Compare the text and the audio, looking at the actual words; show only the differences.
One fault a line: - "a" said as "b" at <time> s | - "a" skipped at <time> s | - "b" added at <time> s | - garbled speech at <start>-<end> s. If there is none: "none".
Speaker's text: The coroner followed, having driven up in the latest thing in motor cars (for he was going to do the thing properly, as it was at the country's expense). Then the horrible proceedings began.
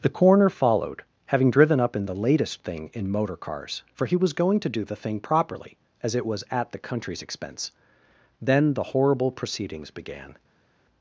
none